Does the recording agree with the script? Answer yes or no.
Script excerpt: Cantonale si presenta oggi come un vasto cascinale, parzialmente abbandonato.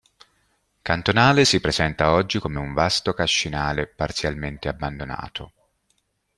yes